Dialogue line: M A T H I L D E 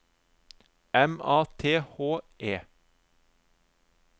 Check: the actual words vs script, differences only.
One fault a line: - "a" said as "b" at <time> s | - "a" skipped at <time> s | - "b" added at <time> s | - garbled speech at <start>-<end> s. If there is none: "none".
- "I L D" skipped at 2.2 s